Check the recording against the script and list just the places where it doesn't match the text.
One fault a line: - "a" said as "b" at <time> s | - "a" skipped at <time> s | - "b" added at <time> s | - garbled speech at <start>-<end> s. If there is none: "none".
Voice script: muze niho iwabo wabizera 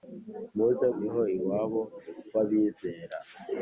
none